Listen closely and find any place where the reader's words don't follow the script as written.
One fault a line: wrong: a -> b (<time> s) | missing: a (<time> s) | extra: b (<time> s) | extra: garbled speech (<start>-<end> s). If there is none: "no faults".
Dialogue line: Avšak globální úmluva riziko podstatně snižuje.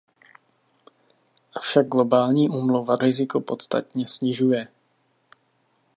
no faults